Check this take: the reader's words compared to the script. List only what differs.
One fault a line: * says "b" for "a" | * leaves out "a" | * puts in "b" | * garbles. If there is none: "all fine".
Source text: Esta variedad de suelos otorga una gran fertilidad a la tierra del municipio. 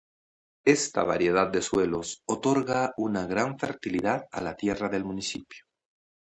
all fine